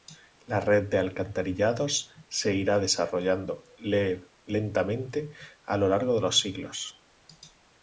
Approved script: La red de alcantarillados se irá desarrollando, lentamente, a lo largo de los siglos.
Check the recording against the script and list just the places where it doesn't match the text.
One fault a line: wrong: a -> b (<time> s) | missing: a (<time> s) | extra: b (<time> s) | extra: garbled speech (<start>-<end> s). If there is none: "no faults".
no faults